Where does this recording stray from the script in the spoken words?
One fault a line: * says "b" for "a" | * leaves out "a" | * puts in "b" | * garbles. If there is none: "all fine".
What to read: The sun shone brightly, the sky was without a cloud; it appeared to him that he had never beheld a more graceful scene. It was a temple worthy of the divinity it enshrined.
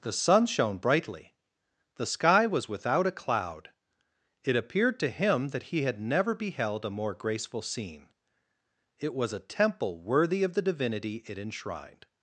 all fine